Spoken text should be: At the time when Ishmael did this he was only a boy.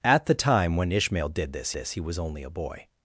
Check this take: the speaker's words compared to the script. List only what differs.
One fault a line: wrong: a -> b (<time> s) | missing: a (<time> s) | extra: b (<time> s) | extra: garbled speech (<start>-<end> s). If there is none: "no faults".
extra: this (1.7 s)